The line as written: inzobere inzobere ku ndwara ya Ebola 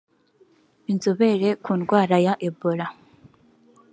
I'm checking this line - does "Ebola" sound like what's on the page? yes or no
yes